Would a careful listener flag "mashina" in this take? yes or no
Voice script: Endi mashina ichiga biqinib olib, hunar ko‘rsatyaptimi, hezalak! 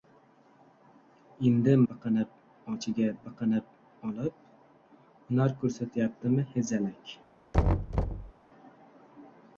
yes